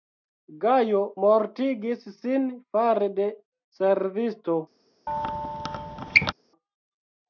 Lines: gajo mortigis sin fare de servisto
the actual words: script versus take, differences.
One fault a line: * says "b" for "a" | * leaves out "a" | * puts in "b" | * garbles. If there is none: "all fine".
all fine